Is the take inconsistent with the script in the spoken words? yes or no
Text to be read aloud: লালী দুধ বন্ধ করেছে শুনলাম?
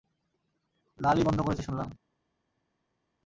yes